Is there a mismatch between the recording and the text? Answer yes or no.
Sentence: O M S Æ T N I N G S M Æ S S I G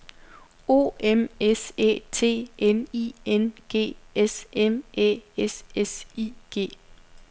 no